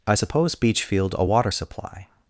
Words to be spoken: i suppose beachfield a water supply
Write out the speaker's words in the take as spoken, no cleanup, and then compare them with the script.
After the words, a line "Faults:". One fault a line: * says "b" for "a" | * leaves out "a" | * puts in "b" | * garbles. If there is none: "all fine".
i suppose beachfield a water supply
Faults:
all fine